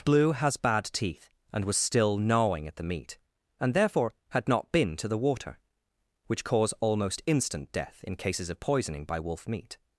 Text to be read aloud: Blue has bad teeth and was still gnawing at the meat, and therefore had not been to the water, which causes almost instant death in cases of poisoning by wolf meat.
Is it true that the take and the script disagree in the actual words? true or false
true